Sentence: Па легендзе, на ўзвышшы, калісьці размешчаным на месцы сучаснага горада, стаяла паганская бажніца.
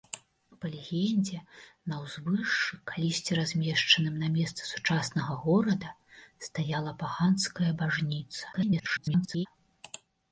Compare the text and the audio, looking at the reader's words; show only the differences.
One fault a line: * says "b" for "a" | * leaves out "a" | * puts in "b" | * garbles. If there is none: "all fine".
* garbles